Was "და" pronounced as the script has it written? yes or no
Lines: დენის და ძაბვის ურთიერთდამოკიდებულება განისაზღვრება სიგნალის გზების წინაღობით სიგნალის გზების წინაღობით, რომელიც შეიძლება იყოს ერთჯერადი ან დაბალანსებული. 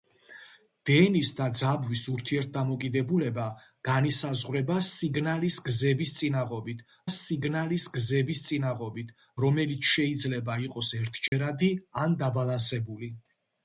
yes